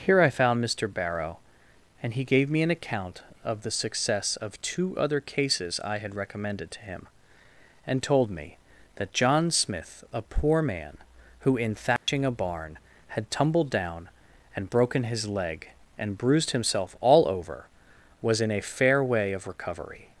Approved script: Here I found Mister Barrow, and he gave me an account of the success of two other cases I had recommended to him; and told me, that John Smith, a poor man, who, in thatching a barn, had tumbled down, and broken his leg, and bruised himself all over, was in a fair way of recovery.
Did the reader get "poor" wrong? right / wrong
right